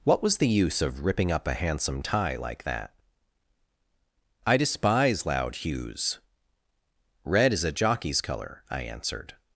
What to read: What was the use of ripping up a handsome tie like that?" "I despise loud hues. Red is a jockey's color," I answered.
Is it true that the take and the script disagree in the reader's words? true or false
false